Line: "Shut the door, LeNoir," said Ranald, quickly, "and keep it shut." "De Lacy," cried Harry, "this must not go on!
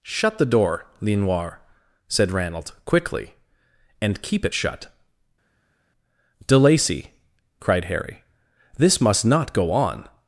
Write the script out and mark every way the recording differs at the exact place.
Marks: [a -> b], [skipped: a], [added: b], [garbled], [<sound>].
"Shut the door, LeNoir," said Ranald, quickly, "and keep it shut." "De Lacy," cried Harry, "this must not go on!